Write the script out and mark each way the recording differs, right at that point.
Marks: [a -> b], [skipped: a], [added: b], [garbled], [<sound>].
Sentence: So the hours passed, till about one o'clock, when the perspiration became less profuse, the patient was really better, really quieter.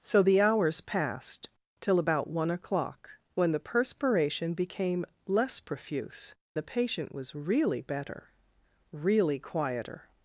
So the hours passed, till about one o'clock, when the perspiration became less profuse, the patient was really better, really quieter.